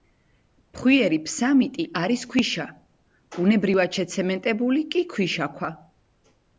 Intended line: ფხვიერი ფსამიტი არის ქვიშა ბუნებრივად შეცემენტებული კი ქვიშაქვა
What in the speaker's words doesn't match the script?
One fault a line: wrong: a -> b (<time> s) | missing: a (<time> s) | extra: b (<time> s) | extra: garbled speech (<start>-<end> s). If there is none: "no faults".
no faults